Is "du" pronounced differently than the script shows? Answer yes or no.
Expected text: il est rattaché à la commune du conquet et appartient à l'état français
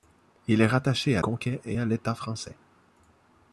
yes